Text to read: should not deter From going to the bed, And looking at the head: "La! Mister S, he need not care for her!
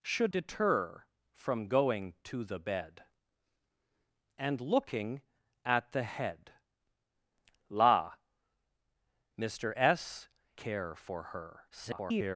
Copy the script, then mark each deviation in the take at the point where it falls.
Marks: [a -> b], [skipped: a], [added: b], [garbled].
should [skipped: not] deter From going to the bed, And looking at the head: "La! Mister S, [skipped: he need not] care for her! [garbled]